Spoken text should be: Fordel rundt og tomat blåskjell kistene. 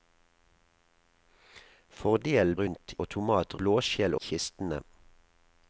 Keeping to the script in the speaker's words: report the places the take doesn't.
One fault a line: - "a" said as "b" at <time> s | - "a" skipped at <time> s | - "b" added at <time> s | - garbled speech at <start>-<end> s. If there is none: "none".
none